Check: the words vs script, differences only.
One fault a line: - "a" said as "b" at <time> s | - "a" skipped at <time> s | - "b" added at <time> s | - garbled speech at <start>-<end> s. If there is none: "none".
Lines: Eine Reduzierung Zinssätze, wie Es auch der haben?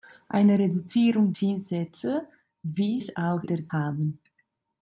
none